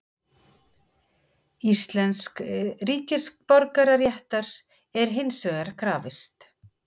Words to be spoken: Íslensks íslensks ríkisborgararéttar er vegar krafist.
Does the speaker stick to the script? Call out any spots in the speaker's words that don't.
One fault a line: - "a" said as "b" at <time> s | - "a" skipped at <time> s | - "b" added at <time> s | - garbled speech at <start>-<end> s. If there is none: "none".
- "íslensks" skipped at 2.5 s
- "hins" added at 5.2 s